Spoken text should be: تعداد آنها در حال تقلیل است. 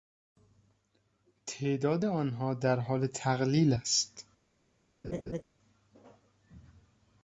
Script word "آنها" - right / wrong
right